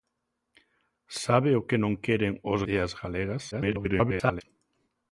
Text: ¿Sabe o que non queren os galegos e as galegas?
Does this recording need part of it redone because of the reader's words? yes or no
yes